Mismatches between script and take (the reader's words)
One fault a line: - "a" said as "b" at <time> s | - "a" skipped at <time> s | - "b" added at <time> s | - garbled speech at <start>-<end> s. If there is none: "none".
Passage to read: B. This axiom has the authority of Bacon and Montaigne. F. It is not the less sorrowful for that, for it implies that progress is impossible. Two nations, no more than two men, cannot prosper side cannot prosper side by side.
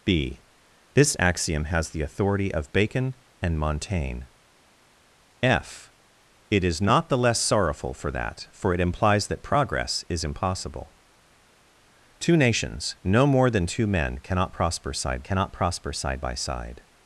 none